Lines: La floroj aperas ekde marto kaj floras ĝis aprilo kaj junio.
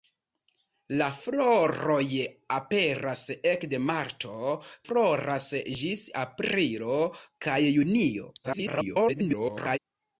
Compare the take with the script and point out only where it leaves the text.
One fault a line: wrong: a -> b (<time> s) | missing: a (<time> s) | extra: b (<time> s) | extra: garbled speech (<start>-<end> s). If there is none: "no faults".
missing: kaj (4.6 s)
extra: garbled speech (8.4-9.8 s)